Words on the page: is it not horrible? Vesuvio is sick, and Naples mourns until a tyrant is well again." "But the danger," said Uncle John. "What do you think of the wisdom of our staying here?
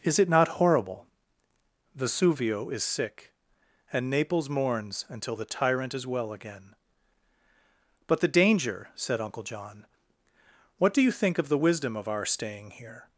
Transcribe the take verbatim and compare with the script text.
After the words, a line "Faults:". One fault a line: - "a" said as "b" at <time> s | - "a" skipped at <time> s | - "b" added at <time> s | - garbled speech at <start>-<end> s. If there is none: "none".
is it not horrible? Vesuvio is sick, and Naples mourns until the tyrant is well again." "But the danger," said Uncle John. "What do you think of the wisdom of our staying here?
Faults:
- "a" said as "the" at 5.3 s